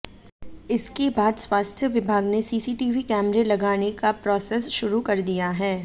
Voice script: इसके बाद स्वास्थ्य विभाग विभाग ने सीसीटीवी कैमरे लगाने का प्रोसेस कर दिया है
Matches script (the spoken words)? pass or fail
fail